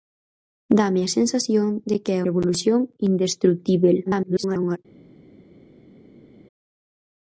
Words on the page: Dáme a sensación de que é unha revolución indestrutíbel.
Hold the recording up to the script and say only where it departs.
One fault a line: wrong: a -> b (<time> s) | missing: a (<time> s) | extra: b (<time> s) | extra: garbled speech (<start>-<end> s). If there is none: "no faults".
missing: unha (2.2 s)
extra: garbled speech (4.1-4.8 s)